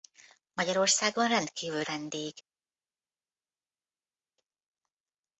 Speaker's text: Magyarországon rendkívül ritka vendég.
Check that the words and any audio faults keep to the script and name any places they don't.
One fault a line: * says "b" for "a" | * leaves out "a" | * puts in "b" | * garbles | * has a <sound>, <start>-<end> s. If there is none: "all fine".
* leaves out "ritka"